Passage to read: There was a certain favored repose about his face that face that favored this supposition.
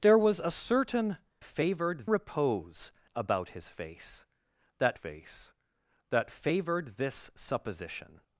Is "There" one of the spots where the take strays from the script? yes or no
no